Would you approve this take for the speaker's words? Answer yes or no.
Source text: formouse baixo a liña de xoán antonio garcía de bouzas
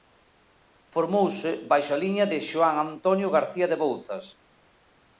yes